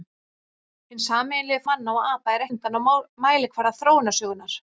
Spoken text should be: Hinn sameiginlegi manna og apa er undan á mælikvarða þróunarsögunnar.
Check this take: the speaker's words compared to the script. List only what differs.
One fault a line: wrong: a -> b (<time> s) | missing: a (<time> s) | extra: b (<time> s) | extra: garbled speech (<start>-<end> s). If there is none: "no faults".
no faults